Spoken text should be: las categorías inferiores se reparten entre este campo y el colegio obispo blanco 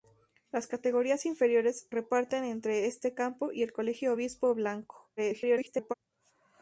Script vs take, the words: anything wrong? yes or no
yes